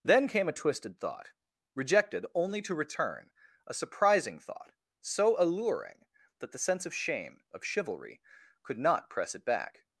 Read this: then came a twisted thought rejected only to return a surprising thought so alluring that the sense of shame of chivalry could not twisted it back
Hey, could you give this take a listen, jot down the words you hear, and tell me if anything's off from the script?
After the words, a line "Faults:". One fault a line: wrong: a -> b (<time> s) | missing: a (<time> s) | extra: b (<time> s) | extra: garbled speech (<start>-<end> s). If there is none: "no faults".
then came a twisted thought rejected only to return a surprising thought so alluring that the sense of shame of chivalry could not press it back
Faults:
wrong: twisted -> press (9.1 s)